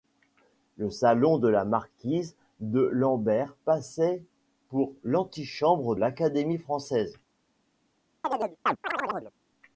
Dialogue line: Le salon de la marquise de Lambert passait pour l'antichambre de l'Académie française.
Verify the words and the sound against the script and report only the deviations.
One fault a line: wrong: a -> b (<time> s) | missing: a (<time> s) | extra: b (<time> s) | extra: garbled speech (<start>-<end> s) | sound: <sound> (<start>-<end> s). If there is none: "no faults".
missing: de (6.0 s)
sound: chirp (8.2-9.3 s)